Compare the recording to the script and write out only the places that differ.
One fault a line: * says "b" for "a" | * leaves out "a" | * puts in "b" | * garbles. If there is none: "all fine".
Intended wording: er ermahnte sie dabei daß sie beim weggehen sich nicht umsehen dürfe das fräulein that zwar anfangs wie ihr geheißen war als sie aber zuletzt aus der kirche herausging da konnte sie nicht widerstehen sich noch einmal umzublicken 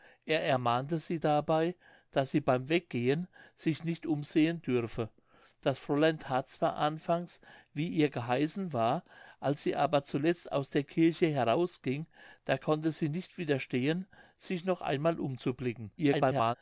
* garbles